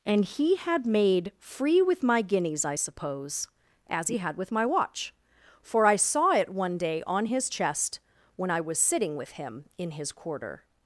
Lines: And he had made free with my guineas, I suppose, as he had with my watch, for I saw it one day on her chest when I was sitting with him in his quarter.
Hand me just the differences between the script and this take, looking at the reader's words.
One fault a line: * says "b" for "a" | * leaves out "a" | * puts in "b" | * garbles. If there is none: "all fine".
* says "his" for "her"